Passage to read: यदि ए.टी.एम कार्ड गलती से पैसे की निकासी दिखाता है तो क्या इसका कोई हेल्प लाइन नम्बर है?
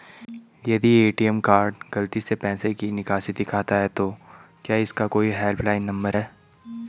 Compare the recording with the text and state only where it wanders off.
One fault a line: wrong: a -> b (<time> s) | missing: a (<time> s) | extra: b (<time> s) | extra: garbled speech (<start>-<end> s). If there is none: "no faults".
no faults